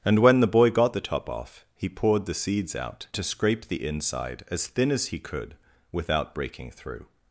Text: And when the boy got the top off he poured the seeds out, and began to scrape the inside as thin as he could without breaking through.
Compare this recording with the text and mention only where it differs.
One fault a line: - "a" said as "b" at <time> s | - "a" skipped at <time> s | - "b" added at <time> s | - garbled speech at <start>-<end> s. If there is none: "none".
- "and began" skipped at 3.1 s